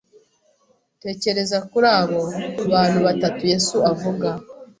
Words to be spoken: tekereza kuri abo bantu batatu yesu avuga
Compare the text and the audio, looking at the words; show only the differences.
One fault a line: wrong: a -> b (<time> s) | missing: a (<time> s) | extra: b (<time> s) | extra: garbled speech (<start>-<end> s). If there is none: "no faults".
no faults